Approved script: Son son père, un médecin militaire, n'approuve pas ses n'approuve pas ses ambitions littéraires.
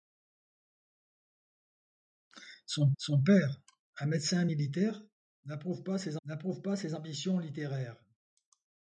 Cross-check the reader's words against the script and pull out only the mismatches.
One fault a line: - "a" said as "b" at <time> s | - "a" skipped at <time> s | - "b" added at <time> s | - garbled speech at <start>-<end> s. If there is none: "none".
none